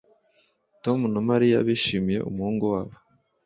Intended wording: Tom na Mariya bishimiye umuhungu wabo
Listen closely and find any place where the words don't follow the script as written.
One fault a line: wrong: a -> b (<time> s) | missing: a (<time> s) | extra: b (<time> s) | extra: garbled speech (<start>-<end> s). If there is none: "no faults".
no faults